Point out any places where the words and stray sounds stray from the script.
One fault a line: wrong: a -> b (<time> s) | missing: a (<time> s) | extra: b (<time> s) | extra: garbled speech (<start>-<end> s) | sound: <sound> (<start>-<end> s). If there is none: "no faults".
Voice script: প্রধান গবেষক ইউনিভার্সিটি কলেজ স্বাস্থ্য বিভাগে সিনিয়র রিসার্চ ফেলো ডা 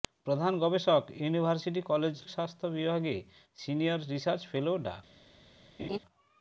sound: laugh (5.8-6.0 s)